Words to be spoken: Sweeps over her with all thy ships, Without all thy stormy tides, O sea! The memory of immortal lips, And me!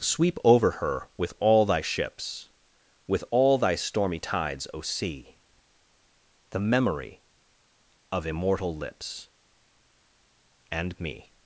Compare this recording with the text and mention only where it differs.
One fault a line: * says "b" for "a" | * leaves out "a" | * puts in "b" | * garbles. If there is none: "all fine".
* says "Sweep" for "Sweeps"
* says "With" for "Without"